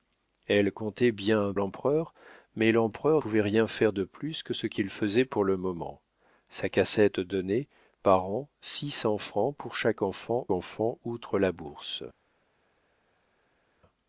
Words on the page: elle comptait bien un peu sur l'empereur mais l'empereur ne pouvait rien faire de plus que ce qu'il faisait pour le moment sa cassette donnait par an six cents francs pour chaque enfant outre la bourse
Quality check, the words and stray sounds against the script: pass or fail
fail